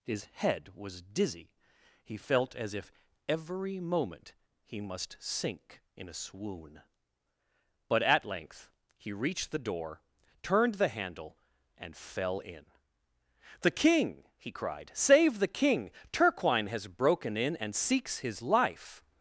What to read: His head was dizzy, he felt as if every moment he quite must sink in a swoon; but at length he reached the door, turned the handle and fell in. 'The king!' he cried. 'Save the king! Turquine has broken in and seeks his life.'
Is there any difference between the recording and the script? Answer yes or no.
yes